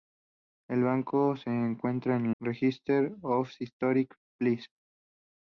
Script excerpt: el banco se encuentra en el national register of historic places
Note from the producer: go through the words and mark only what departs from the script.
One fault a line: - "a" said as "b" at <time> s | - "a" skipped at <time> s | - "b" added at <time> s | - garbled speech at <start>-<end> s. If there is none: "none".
- "el national" skipped at 2.4 s